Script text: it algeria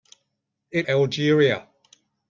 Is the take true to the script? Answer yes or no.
yes